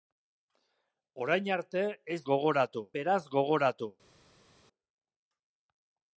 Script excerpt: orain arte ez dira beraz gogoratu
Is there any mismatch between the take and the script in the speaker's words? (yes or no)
yes